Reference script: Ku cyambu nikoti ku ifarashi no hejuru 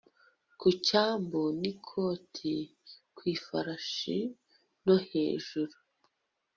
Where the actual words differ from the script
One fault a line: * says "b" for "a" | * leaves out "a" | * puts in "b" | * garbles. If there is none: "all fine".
all fine